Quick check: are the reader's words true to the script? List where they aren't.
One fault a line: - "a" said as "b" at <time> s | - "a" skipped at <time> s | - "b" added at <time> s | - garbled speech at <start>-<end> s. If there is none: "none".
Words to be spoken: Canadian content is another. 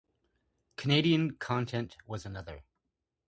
- "is" said as "was" at 2.1 s